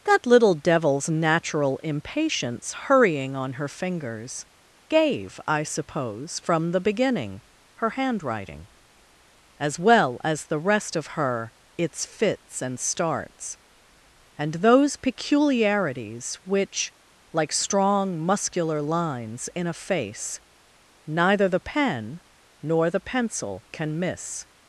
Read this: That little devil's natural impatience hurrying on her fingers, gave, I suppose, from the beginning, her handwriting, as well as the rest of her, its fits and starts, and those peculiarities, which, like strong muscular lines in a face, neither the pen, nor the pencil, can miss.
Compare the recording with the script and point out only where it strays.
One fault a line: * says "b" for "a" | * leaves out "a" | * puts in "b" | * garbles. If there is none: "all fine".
all fine